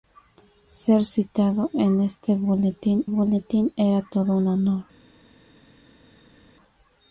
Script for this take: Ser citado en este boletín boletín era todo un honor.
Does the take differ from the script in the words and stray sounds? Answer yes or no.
no